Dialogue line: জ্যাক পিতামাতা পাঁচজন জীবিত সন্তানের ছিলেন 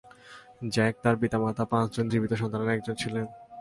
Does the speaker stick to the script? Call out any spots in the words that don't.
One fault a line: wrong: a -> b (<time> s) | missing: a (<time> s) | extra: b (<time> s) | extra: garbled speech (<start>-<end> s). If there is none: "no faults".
extra: তার (1.0 s)
extra: একজন (2.7 s)